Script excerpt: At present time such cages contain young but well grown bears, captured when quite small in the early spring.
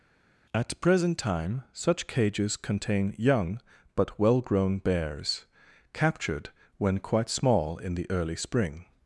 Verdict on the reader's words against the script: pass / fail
pass